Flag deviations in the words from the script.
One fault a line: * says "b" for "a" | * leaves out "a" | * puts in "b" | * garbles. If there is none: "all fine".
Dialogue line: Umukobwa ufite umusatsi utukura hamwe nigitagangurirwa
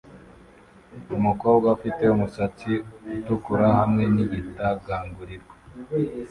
all fine